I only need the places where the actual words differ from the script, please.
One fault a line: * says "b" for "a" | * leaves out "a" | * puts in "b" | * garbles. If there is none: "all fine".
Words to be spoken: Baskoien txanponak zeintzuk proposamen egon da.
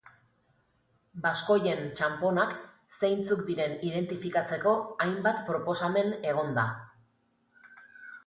* puts in "diren identifikatzeko hainbat"